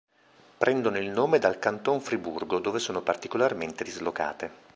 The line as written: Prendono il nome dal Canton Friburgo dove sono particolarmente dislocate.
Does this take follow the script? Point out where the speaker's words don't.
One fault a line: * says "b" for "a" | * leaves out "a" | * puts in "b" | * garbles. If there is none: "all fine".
all fine